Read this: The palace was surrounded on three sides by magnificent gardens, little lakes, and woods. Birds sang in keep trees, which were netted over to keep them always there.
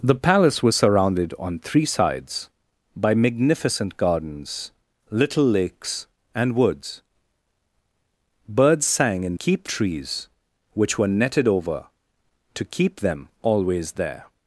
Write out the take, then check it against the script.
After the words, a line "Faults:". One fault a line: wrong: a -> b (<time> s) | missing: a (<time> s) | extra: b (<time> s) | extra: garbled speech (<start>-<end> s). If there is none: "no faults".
The palace was surrounded on three sides by magnificent gardens, little lakes, and woods. Birds sang in keep trees, which were netted over to keep them always there.
Faults:
no faults